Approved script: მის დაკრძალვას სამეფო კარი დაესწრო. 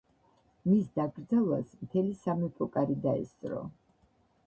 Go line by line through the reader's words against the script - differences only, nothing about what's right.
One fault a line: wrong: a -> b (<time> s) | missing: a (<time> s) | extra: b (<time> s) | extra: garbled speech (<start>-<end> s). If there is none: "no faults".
extra: მთელი (1.8 s)